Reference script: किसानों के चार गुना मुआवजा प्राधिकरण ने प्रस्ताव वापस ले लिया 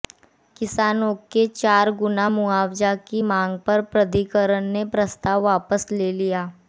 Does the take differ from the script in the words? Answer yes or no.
yes